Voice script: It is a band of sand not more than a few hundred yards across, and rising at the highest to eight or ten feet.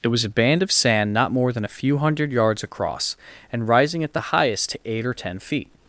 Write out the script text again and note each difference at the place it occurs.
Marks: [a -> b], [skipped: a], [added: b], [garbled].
It [is -> was] a band of sand not more than a few hundred yards across, and rising at the highest to eight or ten feet.